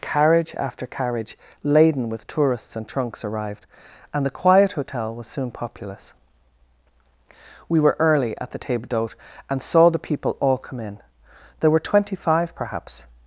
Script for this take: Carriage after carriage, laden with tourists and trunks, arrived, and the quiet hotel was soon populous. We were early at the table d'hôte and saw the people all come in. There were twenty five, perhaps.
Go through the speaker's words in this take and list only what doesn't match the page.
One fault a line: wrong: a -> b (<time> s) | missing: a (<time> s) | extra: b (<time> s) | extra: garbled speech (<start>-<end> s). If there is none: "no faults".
no faults